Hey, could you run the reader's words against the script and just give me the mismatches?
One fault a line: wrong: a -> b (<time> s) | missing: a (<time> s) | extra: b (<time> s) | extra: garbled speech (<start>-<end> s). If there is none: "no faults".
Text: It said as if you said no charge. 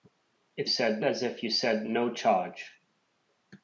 no faults